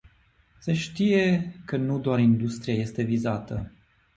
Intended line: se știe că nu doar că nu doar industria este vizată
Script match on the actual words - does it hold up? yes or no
no